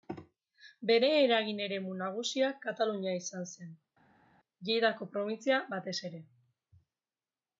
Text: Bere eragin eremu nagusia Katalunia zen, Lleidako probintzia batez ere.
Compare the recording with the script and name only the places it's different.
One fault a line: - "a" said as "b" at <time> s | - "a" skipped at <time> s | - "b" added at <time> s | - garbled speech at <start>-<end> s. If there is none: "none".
- "izan" added at 3.2 s